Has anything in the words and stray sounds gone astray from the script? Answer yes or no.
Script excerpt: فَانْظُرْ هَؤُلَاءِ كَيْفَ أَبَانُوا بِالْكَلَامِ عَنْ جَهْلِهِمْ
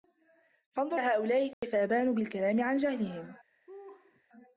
yes